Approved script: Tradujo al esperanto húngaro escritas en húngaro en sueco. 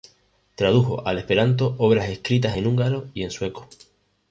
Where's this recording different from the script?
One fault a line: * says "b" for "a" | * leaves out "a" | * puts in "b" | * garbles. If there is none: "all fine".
* says "obras" for "húngaro"
* puts in "y"